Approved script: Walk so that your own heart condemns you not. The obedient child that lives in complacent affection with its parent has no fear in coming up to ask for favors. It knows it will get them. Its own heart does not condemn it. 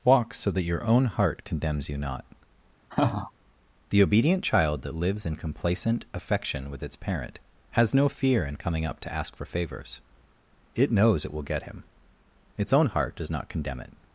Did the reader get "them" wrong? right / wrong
wrong